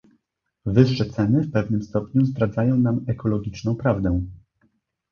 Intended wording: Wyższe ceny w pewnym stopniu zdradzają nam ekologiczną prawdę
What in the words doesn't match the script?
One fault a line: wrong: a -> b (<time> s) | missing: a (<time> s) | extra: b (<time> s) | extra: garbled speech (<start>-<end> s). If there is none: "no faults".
no faults